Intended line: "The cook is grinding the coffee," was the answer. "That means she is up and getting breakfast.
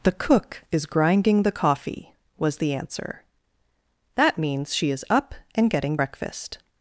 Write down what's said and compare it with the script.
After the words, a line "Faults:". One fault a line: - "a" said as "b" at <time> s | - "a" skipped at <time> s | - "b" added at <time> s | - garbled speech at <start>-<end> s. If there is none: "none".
"The cook is grinding the coffee," was the answer. "That means she is up and getting breakfast.
Faults:
none